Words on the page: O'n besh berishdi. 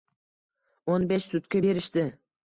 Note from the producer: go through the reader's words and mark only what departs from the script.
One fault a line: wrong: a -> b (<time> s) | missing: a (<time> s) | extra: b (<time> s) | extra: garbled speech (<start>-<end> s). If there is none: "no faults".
extra: sutka (1.3 s)